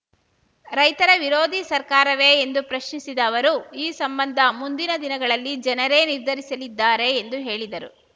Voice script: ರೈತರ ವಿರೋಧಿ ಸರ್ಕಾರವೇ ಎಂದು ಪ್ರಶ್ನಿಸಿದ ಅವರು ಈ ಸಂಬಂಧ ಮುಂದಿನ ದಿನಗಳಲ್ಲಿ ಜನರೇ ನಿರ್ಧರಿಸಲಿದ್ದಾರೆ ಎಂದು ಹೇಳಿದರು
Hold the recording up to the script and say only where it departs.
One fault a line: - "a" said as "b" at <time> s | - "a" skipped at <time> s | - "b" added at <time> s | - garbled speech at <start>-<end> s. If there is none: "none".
none